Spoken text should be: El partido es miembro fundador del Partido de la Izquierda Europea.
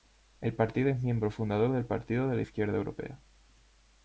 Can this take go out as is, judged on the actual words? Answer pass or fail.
pass